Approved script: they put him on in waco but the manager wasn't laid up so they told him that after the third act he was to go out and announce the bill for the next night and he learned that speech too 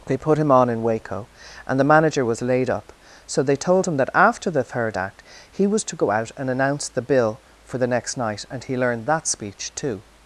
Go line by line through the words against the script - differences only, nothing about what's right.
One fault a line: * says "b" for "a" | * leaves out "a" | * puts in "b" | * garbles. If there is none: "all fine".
* says "and" for "but"
* says "was" for "wasn't"